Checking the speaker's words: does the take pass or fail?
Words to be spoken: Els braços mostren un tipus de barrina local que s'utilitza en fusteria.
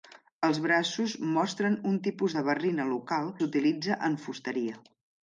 fail